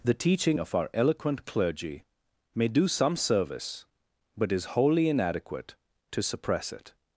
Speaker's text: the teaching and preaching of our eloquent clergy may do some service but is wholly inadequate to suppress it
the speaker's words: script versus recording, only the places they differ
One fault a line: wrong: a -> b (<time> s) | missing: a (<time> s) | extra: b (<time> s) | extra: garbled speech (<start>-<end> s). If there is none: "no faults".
missing: and preaching (0.6 s)